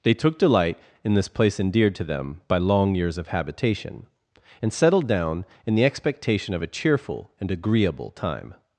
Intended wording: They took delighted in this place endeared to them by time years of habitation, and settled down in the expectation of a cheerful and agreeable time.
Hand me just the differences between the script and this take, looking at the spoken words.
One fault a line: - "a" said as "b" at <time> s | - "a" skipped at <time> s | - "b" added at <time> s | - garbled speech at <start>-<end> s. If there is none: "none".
- "delighted" said as "delight" at 0.4 s
- "time" said as "long" at 2.6 s